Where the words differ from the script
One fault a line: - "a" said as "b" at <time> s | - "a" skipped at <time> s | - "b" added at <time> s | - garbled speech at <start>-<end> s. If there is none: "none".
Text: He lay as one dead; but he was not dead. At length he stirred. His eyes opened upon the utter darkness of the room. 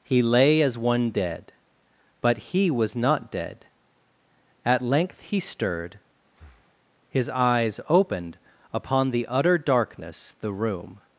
- "of" skipped at 10.3 s